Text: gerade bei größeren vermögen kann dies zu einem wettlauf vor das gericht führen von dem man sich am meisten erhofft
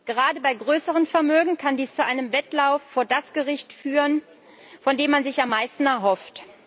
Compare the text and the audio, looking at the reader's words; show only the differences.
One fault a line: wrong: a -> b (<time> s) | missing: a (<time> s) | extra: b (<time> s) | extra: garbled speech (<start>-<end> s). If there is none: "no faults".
no faults